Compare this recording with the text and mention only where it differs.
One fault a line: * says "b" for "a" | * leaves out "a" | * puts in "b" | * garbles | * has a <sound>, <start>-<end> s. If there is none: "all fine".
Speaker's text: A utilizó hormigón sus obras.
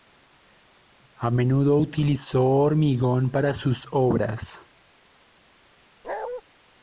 * puts in "menudo"
* puts in "para"
* has a bark, 6.0-6.4 s